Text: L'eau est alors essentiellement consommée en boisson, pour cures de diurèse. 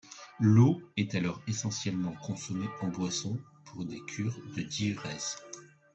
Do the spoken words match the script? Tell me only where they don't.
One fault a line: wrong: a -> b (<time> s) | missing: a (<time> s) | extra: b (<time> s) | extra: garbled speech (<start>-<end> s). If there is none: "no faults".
extra: des (3.8 s)